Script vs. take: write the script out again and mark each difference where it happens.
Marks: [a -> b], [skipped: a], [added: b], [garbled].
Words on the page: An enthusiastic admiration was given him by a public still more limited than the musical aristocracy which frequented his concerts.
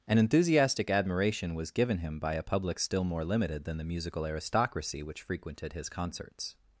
An enthusiastic admiration was given him by a public still more limited than the musical aristocracy which frequented his concerts.